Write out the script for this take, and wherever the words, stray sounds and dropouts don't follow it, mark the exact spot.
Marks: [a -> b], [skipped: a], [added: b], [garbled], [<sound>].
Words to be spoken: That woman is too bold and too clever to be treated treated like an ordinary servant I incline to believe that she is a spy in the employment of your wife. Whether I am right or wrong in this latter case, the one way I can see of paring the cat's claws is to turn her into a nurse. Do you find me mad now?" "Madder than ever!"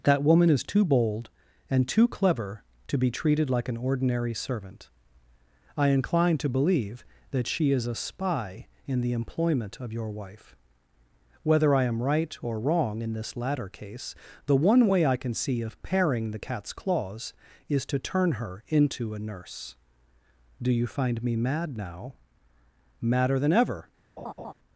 That woman is too bold and too clever to be treated [skipped: treated] like an ordinary servant I incline to believe that she is a spy in the employment of your wife. Whether I am right or wrong in this latter case, the one way I can see of paring the cat's claws is to turn her into a nurse. Do you find me mad now?" "Madder than ever!" [laugh]